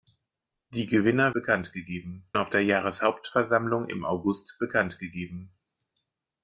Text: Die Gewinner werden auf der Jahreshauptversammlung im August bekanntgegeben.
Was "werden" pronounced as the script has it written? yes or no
no